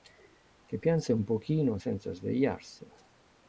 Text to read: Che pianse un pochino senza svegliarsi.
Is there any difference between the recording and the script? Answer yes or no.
no